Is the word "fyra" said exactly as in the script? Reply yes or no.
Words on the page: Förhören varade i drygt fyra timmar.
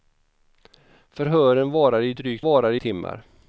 no